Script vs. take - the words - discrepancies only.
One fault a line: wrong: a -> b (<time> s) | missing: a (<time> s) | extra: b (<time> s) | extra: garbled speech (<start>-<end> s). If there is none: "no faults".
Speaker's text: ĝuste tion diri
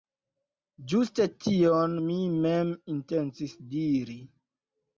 extra: mi mem intencis (2.0 s)